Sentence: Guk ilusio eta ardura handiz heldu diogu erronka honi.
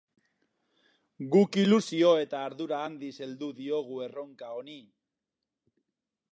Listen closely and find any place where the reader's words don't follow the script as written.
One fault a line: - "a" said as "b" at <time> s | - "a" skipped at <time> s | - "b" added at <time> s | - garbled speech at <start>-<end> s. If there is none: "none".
none